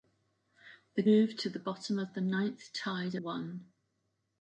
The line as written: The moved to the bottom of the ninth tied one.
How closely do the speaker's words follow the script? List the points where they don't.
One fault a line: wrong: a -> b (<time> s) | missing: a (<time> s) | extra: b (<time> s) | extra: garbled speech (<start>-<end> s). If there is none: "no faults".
no faults